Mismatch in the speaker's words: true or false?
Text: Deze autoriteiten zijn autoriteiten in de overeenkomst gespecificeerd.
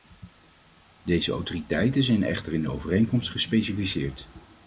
true